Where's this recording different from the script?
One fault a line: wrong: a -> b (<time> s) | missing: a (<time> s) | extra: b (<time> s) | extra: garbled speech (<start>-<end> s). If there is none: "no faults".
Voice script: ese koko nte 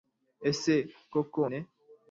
no faults